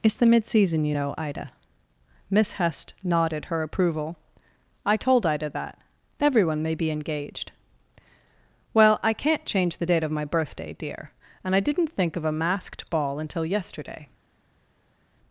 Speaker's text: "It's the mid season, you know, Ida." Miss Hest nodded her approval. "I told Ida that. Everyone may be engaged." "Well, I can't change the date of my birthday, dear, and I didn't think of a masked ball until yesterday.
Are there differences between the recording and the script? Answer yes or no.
no